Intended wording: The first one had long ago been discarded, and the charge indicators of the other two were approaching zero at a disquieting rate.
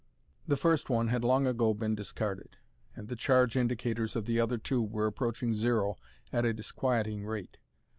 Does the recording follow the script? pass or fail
pass